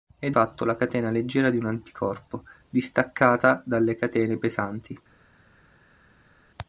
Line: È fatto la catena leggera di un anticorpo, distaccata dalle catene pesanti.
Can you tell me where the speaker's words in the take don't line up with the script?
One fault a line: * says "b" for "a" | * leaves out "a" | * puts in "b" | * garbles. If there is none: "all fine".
all fine